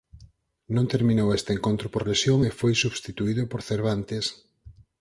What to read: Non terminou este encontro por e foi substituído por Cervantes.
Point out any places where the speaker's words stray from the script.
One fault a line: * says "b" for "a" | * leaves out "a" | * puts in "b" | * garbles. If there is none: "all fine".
* puts in "lesión"